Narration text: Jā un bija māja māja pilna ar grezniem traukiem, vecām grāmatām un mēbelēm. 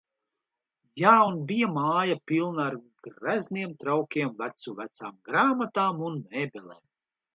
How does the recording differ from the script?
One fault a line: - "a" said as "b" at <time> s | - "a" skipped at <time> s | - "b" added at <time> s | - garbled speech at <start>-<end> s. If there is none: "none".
- "māja" skipped at 2.2 s
- "vecu" added at 4.4 s